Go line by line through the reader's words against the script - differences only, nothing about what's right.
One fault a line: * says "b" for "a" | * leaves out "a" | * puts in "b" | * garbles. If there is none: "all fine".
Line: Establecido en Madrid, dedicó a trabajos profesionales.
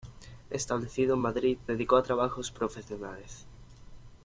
all fine